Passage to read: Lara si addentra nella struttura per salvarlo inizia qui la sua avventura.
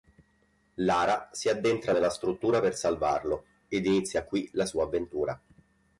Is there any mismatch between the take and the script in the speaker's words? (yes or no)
yes